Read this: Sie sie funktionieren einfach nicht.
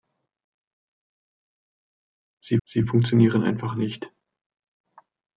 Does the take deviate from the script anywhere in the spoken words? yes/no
no